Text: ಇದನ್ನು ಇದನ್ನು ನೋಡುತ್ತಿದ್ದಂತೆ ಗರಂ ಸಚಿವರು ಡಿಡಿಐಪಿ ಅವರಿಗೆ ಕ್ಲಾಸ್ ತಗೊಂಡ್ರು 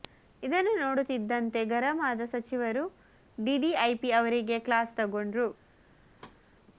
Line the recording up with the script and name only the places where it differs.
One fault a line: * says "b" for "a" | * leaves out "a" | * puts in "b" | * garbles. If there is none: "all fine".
* leaves out "ಇದನ್ನು"
* puts in "ಆದ"